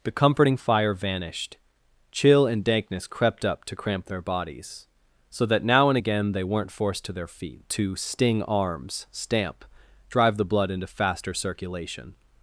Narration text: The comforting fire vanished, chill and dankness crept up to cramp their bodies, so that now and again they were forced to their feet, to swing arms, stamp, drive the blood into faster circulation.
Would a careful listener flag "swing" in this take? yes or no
yes